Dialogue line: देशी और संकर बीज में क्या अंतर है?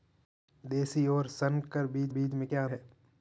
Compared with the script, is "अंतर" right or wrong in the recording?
wrong